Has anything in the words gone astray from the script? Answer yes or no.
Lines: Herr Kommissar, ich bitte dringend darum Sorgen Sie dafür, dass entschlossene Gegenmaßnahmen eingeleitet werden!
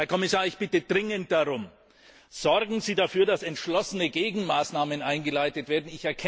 no